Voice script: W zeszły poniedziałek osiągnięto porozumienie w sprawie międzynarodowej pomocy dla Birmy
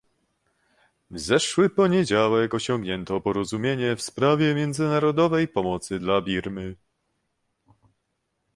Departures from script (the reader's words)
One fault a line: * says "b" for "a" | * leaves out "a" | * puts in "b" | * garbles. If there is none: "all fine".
all fine